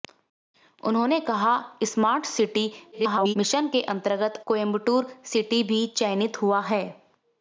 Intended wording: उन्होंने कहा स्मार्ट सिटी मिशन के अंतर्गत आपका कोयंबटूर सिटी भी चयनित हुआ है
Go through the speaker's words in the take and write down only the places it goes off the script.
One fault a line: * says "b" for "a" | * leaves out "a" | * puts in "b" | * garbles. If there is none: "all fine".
* garbles
* leaves out "आपका"